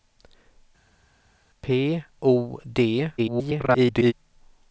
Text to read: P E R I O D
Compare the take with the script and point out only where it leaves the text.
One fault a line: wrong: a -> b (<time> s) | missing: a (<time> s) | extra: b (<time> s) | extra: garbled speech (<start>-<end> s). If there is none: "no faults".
missing: E R I (2.0 s)
extra: garbled speech (3.2-4.1 s)